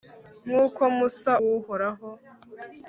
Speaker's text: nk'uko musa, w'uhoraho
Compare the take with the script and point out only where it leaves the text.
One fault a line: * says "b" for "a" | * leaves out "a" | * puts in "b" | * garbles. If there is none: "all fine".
all fine